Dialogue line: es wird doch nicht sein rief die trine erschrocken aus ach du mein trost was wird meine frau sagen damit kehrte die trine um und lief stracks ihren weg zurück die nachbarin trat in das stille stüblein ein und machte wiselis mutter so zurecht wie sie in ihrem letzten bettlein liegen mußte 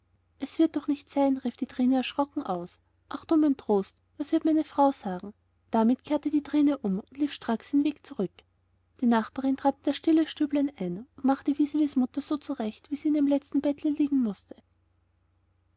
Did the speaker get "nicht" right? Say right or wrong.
right